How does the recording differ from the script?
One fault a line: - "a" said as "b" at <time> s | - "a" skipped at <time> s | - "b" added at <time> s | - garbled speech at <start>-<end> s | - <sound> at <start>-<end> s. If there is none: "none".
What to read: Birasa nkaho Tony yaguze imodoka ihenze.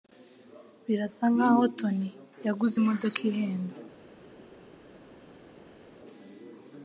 none